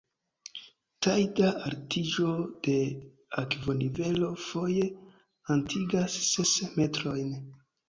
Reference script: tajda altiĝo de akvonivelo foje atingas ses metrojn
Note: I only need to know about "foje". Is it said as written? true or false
true